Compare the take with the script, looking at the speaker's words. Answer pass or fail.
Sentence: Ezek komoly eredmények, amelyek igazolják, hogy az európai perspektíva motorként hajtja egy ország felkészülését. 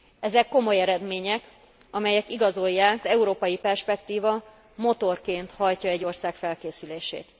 fail